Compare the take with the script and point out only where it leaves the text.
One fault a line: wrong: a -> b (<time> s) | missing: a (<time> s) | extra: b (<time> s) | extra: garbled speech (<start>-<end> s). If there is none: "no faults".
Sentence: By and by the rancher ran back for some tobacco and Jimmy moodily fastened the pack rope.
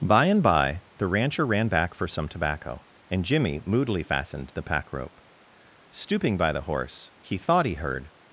extra: Stooping by the horse he thought he heard (5.9 s)